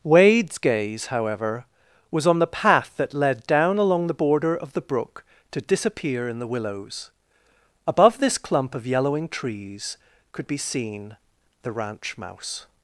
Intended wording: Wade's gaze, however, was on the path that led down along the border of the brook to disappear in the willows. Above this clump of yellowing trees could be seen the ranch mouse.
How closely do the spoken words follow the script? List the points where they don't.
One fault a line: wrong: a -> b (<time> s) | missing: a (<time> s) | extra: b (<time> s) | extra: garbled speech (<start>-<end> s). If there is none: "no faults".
no faults